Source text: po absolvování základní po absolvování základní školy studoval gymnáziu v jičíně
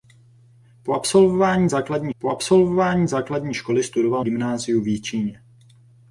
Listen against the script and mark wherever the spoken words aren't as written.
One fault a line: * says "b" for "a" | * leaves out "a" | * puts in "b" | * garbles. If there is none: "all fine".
all fine